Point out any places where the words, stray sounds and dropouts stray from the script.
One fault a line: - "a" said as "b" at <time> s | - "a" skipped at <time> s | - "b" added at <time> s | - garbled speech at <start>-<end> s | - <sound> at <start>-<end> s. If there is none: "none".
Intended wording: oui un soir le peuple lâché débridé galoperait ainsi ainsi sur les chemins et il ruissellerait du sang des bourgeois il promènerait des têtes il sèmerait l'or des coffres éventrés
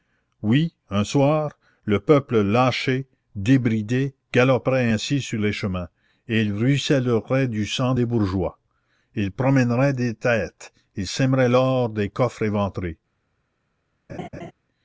- "ainsi" skipped at 5.2 s
- laugh at 14.1-14.5 s